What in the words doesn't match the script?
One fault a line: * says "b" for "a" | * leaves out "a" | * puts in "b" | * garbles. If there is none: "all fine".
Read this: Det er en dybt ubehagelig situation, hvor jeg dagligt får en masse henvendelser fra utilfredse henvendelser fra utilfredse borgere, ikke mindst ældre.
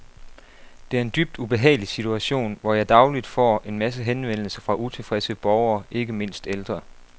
* leaves out "henvendelser fra utilfredse"